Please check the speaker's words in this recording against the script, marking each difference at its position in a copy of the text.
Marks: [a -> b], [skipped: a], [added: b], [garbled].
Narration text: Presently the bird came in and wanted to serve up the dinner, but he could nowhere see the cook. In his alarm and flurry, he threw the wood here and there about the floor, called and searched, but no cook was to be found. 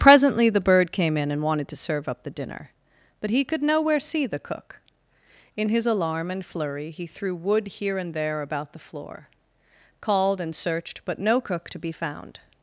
Presently the bird came in and wanted to serve up the dinner, but he could nowhere see the cook. In his alarm and flurry, he threw [skipped: the] wood here and there about the floor, called and searched, but no cook [skipped: was] to be found.